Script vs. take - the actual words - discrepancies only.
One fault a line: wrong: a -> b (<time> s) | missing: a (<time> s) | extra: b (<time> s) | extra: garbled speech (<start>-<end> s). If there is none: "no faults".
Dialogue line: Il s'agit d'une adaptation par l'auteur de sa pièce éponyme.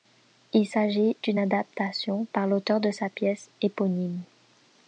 no faults